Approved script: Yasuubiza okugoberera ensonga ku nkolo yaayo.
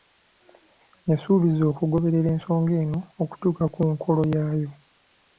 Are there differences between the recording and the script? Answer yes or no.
yes